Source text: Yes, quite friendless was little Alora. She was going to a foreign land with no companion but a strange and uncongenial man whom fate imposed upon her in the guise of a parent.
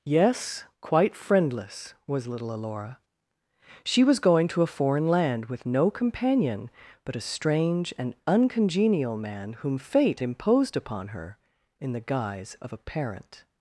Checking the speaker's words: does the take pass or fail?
pass